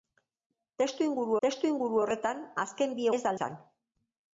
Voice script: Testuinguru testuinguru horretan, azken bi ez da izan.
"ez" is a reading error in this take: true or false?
false